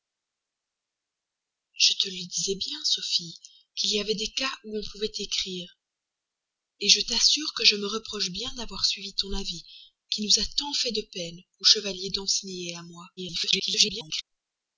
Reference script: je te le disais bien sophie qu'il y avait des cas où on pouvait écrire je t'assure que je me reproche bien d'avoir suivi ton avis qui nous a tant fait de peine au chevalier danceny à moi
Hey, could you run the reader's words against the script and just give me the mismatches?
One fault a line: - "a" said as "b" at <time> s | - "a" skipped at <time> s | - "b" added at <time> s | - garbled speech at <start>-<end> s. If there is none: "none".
- garbled speech at 13.2-14.2 s